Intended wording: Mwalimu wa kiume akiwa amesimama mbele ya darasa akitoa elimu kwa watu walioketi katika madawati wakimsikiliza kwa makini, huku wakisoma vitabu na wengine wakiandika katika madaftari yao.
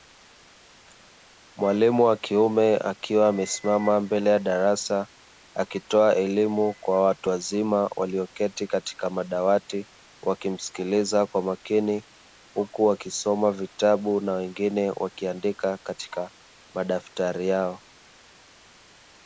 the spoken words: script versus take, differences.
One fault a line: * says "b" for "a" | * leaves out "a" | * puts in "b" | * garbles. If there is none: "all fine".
* puts in "wazima"